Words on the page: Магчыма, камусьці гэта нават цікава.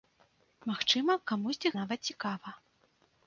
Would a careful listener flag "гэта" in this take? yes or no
yes